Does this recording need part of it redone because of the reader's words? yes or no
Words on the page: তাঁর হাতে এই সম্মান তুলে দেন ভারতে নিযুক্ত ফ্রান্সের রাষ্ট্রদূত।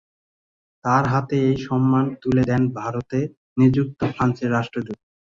no